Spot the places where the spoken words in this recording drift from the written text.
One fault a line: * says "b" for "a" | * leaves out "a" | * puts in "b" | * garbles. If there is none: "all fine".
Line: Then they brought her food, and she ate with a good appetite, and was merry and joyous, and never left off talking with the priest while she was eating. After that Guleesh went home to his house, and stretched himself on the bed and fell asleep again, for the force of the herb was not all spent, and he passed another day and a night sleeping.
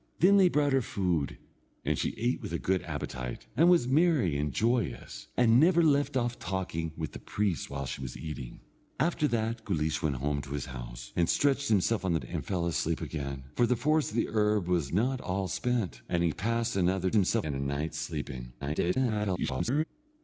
* leaves out "bed"
* says "himself" for "day"
* garbles